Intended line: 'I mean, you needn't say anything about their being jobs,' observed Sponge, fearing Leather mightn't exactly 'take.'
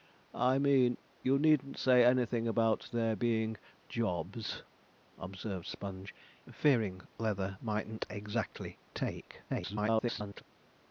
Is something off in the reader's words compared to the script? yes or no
yes